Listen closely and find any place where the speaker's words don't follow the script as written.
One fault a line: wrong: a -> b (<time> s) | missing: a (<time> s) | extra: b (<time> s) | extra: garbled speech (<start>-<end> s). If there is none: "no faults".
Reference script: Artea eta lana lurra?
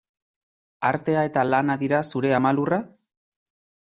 extra: dira zure ama (1.8 s)